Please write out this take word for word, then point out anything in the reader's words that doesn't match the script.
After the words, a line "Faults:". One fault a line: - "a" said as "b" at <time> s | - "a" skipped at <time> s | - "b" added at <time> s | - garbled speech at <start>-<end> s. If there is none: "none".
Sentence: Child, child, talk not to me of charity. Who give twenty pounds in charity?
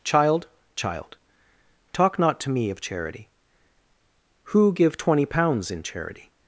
Child, child, talk not to me of charity. Who give twenty pounds in charity?
Faults:
none